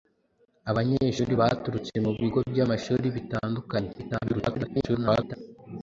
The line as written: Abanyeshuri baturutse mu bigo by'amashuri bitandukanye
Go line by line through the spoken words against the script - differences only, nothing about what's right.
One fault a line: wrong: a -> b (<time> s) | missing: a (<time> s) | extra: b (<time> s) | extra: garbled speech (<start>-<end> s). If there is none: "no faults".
extra: garbled speech (4.0-5.4 s)